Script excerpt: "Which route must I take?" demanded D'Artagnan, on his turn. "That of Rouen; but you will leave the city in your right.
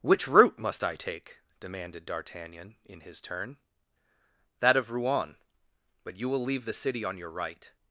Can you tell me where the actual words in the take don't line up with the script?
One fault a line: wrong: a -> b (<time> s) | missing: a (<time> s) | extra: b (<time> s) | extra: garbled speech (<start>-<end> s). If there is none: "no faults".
wrong: on -> in (2.8 s)
wrong: in -> on (7.0 s)